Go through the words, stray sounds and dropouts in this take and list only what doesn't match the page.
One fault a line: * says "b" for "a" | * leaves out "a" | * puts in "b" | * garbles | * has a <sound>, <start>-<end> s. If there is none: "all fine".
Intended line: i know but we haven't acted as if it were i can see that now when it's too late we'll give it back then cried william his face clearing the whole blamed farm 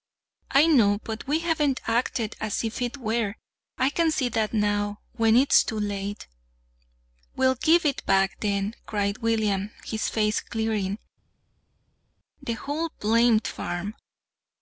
all fine